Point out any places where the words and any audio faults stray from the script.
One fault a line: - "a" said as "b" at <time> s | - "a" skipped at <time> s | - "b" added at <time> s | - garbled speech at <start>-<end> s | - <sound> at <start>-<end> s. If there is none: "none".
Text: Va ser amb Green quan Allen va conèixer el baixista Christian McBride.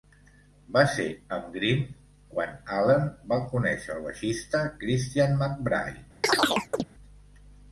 - chirp at 6.2-6.8 s